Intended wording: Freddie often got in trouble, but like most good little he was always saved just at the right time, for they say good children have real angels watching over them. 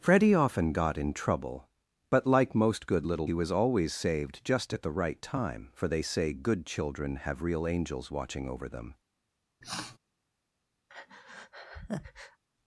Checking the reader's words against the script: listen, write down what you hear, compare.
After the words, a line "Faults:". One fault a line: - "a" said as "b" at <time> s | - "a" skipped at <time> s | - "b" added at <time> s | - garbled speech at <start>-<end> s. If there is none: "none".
Freddie often got in trouble, but like most good little he was always saved just at the right time, for they say good children have real angels watching over them.
Faults:
none